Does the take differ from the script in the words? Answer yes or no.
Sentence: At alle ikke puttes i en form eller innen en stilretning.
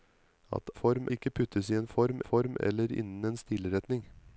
yes